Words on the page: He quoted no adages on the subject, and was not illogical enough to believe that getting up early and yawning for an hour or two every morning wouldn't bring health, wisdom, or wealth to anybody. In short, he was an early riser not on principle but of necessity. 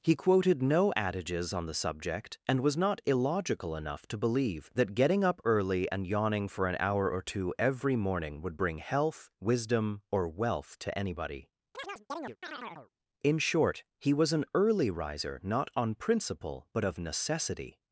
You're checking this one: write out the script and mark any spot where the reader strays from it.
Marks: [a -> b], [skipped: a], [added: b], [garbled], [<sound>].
He quoted no adages on the subject, and was not illogical enough to believe that getting up early and yawning for an hour or two every morning [wouldn't -> would] bring health, wisdom, or wealth to anybody. [chirp] In short, he was an early riser not on principle but of necessity.